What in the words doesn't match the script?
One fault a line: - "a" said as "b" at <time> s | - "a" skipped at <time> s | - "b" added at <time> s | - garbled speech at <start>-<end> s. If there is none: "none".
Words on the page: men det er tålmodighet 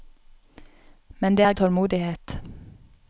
none